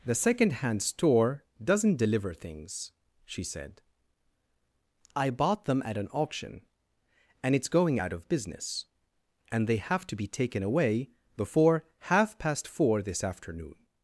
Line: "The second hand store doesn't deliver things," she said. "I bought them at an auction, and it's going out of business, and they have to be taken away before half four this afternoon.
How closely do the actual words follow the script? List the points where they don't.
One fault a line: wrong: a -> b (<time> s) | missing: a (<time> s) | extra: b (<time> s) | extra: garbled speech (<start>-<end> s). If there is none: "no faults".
extra: past (12.4 s)